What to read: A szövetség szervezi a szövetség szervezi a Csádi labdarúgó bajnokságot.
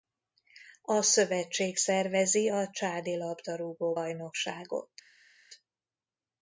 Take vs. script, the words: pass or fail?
fail